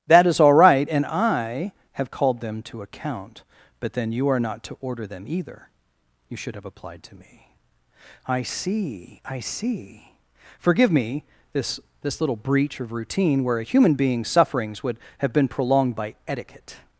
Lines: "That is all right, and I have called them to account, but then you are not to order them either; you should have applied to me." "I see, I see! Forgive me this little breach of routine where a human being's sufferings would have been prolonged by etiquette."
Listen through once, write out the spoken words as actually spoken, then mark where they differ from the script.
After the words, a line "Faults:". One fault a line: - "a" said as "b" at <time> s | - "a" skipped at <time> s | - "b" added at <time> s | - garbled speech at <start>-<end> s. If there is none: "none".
"That is all right, and I have called them to account, but then you are not to order them either; you should have applied to me." "I see, I see! Forgive me this this little breach of routine where a human being's sufferings would have been prolonged by etiquette."
Faults:
- "this" added at 12.0 s